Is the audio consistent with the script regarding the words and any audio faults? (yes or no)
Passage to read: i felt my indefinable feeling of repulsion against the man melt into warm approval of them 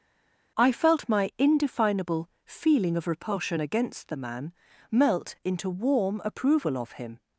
no